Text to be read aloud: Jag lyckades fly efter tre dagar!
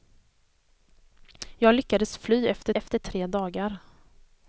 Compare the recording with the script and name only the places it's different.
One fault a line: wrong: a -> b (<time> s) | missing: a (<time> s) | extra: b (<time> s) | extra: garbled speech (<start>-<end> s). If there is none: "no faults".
extra: efter (2.7 s)